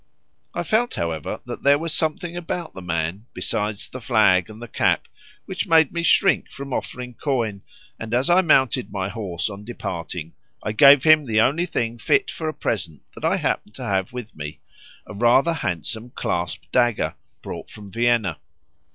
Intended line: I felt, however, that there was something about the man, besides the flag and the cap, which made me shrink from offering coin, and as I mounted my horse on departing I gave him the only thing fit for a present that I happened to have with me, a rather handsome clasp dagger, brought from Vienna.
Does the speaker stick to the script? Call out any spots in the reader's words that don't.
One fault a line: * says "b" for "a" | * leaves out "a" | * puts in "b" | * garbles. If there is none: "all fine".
all fine